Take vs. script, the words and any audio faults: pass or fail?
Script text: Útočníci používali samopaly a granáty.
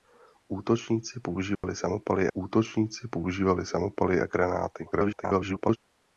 fail